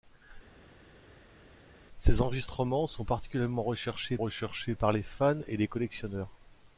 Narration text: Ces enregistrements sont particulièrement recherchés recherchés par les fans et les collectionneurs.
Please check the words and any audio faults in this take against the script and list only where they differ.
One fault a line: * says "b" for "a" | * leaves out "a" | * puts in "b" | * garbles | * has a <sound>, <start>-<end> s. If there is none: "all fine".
all fine